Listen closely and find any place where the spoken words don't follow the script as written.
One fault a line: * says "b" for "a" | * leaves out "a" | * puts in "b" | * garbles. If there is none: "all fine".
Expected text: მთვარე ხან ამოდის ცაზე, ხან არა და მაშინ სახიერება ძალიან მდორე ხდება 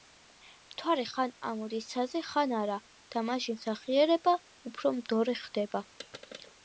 * says "უფრო" for "ძალიან"